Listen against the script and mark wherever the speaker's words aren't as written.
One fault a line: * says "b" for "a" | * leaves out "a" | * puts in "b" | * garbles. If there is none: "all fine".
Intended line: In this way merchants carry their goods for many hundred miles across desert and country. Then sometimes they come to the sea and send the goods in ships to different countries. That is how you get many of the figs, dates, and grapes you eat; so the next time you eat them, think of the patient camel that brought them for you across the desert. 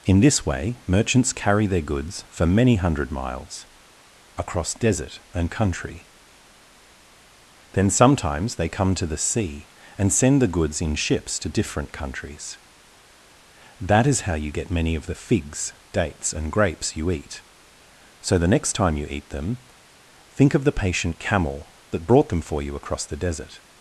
all fine